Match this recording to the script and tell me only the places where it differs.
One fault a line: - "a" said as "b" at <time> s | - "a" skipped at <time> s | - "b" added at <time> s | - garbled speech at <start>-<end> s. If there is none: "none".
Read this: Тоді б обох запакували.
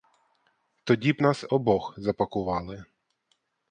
- "нас" added at 1.2 s